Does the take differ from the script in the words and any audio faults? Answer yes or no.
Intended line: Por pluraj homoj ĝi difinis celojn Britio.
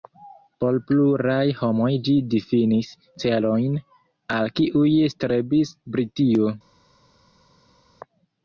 yes